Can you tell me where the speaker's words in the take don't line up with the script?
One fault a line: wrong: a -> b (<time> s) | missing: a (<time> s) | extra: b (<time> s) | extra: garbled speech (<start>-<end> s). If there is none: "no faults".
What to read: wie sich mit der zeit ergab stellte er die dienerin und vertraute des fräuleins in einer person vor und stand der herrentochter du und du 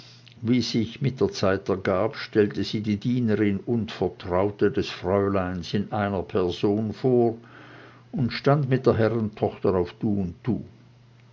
wrong: er -> sie (2.6 s)
extra: mit (8.7 s)
extra: auf (9.7 s)